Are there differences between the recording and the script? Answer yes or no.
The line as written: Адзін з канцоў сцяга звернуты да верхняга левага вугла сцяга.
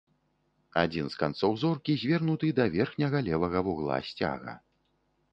yes